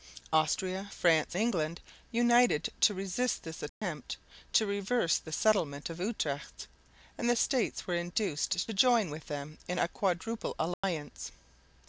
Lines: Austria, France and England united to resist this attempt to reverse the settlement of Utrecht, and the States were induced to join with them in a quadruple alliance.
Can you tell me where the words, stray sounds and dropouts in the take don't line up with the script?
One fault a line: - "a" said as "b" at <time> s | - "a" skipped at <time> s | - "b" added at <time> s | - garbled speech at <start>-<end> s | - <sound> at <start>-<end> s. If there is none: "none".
- "and" skipped at 1.4 s
- dropout at 3.7-3.8 s
- dropout at 10.7-10.8 s